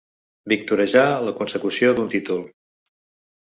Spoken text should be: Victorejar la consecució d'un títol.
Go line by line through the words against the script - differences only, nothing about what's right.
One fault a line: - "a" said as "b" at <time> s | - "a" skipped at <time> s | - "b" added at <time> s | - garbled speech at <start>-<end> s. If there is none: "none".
none